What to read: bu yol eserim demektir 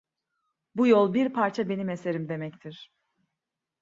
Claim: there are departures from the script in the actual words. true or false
true